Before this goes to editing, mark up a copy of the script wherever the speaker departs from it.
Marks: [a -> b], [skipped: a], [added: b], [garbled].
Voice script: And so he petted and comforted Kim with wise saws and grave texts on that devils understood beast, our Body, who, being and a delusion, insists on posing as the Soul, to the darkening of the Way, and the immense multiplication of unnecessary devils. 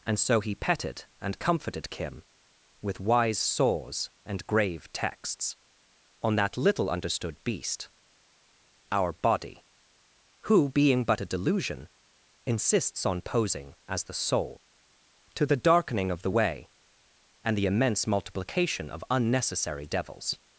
And so he petted and comforted Kim with wise saws and grave texts on that [devils -> little] understood beast, our Body, who, being [and -> but] a delusion, insists on posing as the Soul, to the darkening of the Way, and the immense multiplication of unnecessary devils.